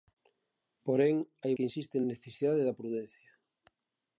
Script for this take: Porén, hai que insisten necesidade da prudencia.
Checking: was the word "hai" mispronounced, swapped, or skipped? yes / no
no